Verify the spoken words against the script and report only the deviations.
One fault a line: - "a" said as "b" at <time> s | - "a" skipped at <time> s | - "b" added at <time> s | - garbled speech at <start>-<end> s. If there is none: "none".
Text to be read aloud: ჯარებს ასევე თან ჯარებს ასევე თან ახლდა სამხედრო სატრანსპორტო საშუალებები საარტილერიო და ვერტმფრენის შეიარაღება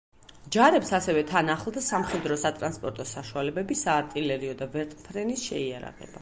- "ჯარებს ასევე თან" skipped at 1.5 s